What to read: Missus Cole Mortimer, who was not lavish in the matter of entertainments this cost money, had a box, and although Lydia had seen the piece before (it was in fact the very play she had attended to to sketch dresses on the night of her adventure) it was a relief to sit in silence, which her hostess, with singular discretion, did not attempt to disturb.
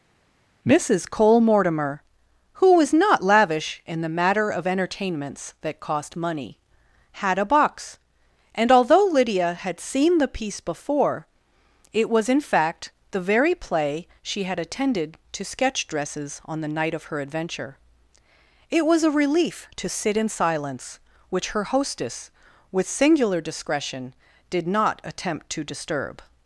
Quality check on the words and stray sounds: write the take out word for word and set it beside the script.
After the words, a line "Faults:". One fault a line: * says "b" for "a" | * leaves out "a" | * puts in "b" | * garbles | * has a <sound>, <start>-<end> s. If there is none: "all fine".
Missus Cole Mortimer, who was not lavish in the matter of entertainments that cost money, had a box, and although Lydia had seen the piece before (it was in fact the very play she had attended to sketch dresses on the night of her adventure) it was a relief to sit in silence, which her hostess, with singular discretion, did not attempt to disturb.
Faults:
* says "that" for "this"
* leaves out "to"